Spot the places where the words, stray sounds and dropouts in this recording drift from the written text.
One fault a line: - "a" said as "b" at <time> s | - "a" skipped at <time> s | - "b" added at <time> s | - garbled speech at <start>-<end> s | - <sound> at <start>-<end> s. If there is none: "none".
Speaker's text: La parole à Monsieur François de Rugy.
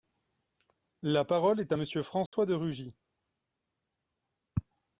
- "est" added at 1.6 s
- dropout at 2.3-2.3 s